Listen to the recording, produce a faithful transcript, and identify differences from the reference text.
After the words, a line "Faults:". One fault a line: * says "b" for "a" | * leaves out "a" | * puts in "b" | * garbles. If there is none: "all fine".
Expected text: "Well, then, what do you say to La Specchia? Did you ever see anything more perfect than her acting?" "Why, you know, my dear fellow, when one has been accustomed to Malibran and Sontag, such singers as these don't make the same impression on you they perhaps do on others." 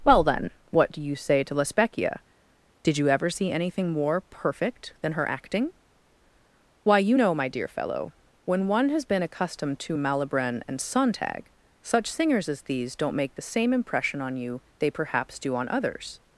"Well, then, what do you say to La Specchia? Did you ever see anything more perfect than her acting?" "Why, you know, my dear fellow, when one has been accustomed to Malibran and Sontag, such singers as these don't make the same impression on you they perhaps do on others."
Faults:
all fine